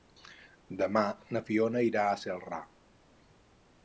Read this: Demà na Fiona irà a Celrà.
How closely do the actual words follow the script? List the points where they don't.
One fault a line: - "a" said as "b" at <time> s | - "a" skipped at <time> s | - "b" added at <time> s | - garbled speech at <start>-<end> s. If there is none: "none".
none